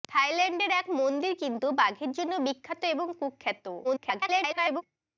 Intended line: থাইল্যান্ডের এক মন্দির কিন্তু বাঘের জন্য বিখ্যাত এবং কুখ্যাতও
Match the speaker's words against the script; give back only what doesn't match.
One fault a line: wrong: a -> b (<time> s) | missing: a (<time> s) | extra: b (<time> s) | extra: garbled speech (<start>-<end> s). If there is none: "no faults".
extra: garbled speech (3.8-4.8 s)